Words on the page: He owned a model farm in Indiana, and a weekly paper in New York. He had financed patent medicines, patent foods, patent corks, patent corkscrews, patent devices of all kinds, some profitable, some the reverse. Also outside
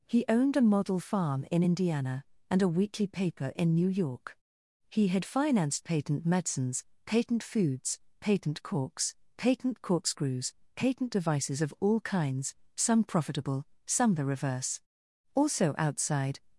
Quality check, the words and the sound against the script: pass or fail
pass